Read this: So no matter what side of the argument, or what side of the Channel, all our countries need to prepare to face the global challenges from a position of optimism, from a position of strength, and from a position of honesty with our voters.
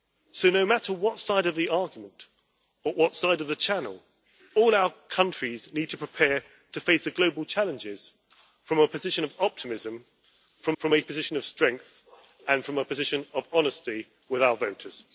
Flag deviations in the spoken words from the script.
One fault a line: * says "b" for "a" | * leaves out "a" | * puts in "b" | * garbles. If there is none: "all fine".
* puts in "from"